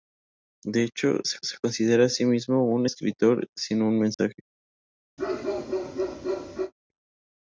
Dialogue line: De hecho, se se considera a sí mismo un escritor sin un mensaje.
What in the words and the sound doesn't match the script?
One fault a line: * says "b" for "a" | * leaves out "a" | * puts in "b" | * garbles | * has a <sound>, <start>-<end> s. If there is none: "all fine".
* has a dropout, 4.1-4.2 s
* has a bark, 5.2-6.7 s